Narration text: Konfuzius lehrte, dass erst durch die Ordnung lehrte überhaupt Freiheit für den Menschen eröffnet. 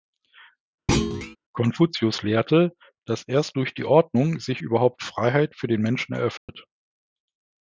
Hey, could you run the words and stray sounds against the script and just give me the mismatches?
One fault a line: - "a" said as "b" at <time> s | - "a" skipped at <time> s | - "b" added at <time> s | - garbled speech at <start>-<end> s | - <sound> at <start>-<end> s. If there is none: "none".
- thud at 0.9-1.4 s
- "lehrte" said as "sich" at 4.4 s
- dropout at 6.4-6.5 s